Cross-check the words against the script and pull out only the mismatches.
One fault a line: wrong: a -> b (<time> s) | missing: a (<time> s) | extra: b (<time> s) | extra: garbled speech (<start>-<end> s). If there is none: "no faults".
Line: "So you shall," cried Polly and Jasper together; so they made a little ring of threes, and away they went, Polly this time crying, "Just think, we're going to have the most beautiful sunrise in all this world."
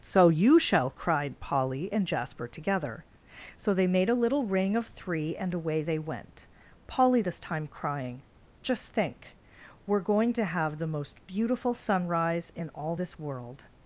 wrong: threes -> three (4.9 s)